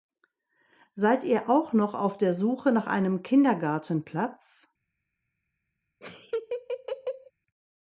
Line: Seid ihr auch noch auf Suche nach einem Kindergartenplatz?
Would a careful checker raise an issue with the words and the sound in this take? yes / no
yes